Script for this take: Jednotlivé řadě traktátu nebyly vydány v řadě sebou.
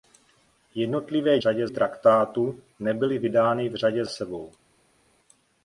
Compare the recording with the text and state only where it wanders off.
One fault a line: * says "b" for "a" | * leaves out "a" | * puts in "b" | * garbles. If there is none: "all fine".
all fine